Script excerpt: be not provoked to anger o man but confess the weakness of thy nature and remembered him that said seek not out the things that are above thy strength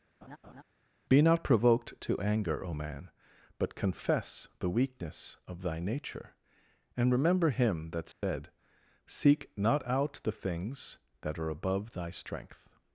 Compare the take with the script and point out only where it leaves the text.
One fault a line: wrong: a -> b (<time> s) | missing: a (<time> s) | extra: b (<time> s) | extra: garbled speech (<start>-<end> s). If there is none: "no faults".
wrong: remembered -> remember (7.1 s)